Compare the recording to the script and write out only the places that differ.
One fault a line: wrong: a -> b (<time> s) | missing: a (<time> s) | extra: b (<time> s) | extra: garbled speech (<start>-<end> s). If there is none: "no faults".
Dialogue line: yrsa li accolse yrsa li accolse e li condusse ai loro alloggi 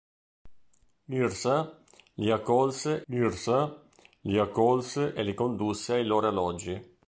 no faults